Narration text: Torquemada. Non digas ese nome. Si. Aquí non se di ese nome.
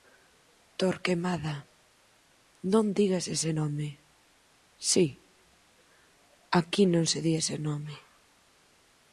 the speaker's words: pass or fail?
pass